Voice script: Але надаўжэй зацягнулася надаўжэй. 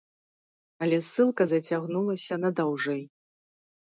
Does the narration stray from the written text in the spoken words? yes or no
yes